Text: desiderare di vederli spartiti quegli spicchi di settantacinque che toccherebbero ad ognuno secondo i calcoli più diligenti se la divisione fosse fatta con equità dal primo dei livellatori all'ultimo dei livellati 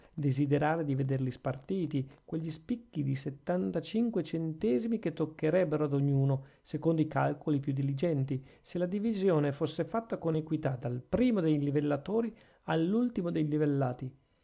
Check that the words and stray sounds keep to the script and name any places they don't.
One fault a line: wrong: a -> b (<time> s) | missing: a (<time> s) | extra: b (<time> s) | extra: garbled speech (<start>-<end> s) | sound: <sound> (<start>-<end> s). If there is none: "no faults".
extra: centesimi (4.2 s)